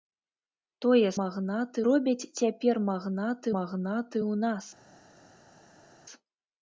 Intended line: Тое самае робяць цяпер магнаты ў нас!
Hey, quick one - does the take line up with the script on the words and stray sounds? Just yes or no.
no